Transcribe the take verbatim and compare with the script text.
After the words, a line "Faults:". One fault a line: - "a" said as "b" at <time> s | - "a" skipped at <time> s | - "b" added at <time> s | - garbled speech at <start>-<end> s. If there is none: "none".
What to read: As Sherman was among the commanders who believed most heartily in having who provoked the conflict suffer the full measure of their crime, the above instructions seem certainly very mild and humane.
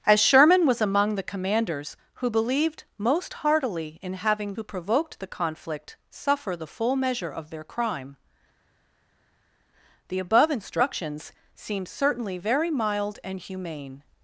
As Sherman was among the commanders who believed most heartily in having who provoked the conflict suffer the full measure of their crime, the above instructions seem certainly very mild and humane.
Faults:
none